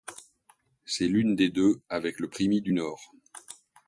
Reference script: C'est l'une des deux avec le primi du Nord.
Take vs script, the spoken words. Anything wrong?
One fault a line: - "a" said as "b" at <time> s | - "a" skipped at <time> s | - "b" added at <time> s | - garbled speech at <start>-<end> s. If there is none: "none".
none